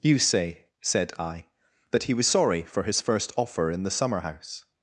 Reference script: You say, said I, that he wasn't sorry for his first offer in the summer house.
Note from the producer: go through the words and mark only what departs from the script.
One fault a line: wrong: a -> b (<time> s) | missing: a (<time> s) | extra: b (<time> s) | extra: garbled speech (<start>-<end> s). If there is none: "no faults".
wrong: wasn't -> was (2.1 s)